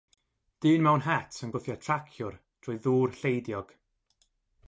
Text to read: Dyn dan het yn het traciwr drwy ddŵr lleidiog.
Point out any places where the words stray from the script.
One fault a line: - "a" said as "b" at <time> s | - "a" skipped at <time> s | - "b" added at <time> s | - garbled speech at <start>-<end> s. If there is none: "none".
- "dan" said as "mewn" at 0.8 s
- "het" said as "gwthio" at 1.5 s